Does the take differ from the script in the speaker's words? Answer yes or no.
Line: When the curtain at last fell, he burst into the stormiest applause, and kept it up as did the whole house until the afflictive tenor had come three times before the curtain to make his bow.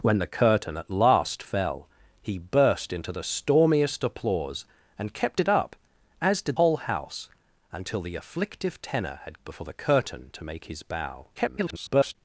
yes